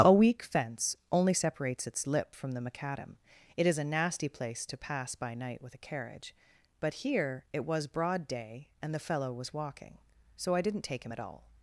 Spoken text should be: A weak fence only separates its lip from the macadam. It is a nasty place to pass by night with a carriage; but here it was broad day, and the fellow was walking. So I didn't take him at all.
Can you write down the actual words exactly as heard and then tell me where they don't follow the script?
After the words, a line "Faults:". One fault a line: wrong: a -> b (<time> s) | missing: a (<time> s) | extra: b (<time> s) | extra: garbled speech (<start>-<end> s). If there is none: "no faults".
A weak fence only separates its lip from the macadam. It is a nasty place to pass by night with a carriage; but here it was broad day, and the fellow was walking. So I didn't take him at all.
Faults:
no faults